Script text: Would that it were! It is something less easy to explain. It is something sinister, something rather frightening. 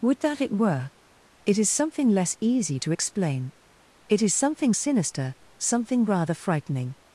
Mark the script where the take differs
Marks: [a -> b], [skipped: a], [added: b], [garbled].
Would that it were! It is something less easy to explain. It is something sinister, something rather frightening.